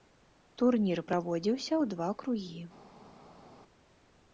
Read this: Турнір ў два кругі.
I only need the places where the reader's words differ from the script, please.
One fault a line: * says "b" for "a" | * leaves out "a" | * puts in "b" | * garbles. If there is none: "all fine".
* puts in "праводзіўся"